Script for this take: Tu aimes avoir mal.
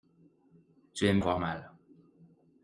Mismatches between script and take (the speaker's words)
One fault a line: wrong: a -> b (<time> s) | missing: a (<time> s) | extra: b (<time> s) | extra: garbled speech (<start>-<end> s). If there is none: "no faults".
no faults